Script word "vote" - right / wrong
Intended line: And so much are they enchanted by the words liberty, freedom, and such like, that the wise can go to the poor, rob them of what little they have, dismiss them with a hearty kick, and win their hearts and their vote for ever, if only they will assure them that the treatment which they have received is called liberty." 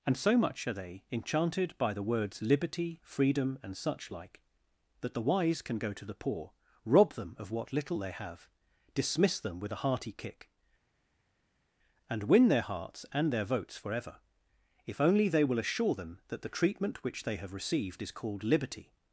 wrong